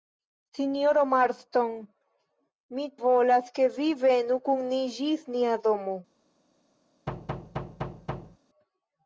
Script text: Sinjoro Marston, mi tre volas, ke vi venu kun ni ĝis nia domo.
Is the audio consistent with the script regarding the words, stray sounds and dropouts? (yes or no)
no